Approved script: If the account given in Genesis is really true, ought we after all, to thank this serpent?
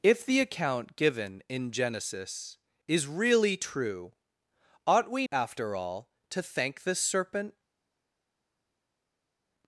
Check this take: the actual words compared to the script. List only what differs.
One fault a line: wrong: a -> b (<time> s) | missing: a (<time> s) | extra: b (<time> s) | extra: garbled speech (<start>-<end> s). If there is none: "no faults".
no faults